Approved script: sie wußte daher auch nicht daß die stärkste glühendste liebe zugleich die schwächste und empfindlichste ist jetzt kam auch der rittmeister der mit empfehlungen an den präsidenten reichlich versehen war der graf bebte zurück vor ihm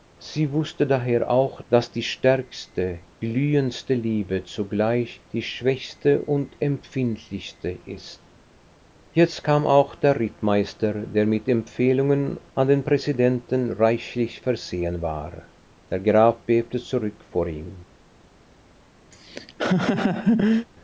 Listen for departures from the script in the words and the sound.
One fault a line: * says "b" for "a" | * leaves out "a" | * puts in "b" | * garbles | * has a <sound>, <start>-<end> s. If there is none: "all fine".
* leaves out "nicht"
* has a laugh, 19.1-20.7 s